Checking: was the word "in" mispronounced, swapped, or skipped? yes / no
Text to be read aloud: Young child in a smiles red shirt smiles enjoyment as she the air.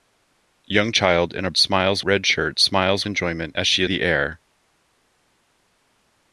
no